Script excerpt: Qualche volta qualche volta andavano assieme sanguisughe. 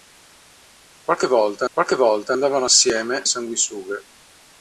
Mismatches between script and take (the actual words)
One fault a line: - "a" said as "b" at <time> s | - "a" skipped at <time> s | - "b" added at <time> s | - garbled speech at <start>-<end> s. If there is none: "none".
none